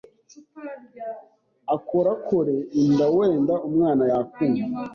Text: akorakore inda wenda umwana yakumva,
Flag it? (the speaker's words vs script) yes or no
no